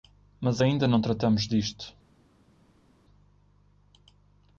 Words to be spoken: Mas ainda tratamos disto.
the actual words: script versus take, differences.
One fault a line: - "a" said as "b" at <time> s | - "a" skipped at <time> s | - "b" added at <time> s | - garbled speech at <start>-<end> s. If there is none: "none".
- "não" added at 0.9 s